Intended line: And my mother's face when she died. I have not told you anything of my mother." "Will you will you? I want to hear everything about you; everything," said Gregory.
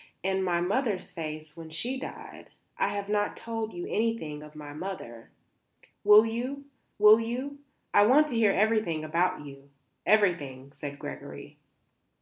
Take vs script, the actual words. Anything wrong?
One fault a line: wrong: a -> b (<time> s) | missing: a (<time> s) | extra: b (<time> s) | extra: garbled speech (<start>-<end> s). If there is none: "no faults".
no faults